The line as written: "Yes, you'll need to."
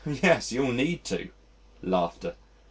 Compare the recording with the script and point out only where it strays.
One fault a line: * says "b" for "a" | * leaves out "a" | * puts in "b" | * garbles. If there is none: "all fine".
all fine